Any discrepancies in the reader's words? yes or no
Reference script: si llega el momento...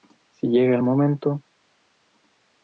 no